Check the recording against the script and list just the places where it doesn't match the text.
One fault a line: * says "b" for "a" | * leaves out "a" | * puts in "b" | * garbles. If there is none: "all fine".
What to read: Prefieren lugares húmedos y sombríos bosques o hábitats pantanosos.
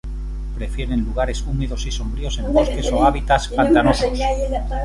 * puts in "en"